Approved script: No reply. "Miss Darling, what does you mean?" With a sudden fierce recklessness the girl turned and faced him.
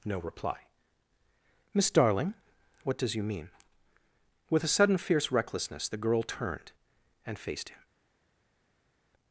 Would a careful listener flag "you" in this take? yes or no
no